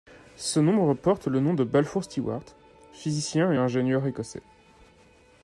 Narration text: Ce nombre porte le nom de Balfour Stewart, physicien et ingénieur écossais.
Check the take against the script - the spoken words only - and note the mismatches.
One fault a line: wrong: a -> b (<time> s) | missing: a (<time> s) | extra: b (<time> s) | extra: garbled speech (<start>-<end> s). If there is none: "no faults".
no faults